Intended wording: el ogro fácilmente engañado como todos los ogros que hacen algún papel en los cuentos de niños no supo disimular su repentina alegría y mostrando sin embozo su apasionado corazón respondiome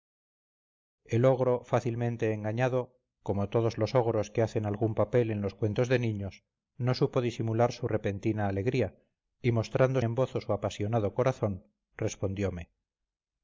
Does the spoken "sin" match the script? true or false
false